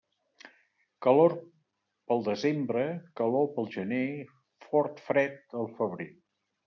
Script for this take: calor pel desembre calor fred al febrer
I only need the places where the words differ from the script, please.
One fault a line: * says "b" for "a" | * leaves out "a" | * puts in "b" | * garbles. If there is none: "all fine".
* puts in "pel gener fort"